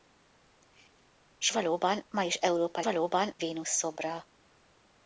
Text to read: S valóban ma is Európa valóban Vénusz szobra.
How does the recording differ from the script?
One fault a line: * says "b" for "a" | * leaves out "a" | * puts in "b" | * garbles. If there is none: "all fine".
all fine